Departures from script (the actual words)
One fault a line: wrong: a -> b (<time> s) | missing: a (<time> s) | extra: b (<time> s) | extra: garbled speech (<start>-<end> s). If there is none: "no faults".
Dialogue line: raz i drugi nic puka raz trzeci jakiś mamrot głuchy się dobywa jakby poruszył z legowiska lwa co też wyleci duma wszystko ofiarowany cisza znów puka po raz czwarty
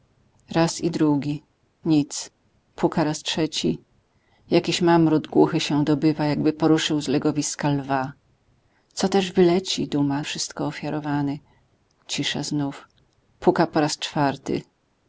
no faults